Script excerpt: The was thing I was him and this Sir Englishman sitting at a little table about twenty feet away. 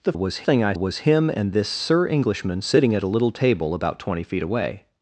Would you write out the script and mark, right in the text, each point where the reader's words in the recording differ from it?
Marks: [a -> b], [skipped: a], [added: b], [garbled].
The was thing I was him and this Sir Englishman sitting at a little table about twenty feet away.